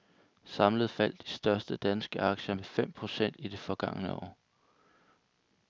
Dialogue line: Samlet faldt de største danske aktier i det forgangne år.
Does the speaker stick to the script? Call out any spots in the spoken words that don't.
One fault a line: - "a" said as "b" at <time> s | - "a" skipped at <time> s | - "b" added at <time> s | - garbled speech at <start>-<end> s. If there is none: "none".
- "med fem procent" added at 2.5 s